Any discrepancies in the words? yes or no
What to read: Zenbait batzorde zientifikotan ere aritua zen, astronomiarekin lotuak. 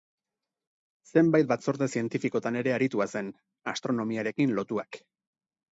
no